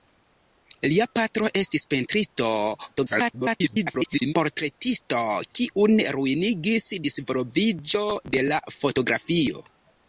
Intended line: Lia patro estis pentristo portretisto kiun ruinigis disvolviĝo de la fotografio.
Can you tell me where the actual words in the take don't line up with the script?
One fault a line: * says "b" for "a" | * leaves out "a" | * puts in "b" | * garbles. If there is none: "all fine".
* garbles